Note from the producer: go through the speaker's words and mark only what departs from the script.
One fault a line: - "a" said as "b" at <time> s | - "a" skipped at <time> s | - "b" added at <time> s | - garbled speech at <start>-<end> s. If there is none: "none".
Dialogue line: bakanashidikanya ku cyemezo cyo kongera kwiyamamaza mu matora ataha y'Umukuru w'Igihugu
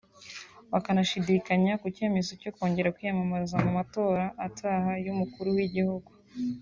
none